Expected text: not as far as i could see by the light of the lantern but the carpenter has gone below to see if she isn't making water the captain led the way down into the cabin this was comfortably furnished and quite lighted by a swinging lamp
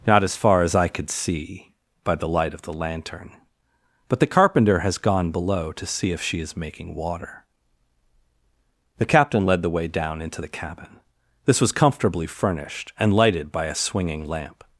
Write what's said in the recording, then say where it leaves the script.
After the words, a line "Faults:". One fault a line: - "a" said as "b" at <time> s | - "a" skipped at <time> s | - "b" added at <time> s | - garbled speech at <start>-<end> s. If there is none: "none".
not as far as i could see by the light of the lantern but the carpenter has gone below to see if she is making water the captain led the way down into the cabin this was comfortably furnished and lighted by a swinging lamp
Faults:
- "isn't" said as "is" at 6.4 s
- "quite" skipped at 13.1 s